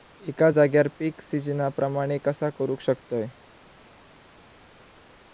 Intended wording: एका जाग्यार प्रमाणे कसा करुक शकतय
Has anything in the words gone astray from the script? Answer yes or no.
yes